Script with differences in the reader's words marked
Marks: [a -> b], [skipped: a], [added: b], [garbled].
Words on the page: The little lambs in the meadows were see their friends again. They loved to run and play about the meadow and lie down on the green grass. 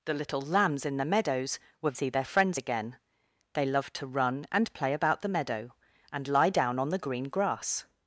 The little lambs in the meadows were see their friends again. They loved to run and play about the meadow and lie down on the green grass.